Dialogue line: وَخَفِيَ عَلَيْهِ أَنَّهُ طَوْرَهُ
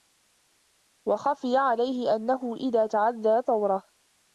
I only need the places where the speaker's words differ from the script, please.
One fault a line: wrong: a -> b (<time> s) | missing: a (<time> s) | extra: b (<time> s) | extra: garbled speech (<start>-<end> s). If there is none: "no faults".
extra: إذَا تَعَدَّى (2.5 s)